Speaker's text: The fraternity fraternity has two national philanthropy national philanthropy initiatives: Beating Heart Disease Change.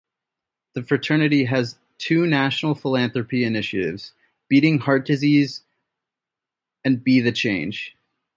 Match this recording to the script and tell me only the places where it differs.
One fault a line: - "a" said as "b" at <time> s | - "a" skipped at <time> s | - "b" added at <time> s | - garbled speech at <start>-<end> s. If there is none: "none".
- "fraternity" skipped at 1.4 s
- "national philanthropy" skipped at 3.4 s
- "and Be the" added at 6.8 s